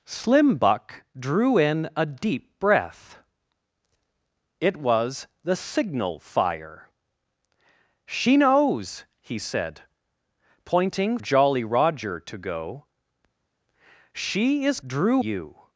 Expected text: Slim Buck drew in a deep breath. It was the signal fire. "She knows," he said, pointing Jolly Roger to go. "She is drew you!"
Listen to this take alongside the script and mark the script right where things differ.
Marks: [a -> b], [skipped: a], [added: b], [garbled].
Slim Buck drew in a deep breath. It was the signal fire. "She knows," he said, pointing Jolly Roger to go. "She is drew you!"